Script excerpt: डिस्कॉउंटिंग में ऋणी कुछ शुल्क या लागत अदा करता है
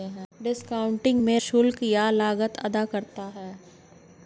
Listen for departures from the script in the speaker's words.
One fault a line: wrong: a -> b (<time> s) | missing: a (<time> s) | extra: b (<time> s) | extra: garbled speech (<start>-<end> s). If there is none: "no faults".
missing: ऋणी कुछ (1.4 s)